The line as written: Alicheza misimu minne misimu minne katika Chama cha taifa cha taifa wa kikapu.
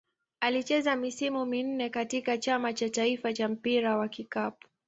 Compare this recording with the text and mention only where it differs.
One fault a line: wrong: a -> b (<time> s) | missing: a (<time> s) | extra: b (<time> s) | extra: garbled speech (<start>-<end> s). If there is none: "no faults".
missing: misimu minne (1.9 s)
wrong: taifa -> mpira (3.5 s)